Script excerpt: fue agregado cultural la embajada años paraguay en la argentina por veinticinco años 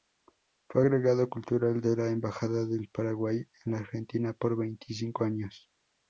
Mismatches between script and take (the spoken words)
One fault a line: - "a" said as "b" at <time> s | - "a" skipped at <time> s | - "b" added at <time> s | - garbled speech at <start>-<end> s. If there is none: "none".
- "de" added at 1.8 s
- "años" said as "del" at 2.6 s